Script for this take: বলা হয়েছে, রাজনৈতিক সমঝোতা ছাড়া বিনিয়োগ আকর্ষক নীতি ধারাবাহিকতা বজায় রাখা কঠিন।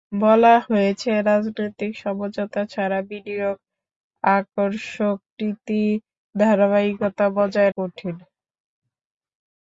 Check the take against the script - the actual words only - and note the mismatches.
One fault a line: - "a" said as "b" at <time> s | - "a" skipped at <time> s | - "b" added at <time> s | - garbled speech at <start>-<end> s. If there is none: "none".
- "রাখা" skipped at 7.7 s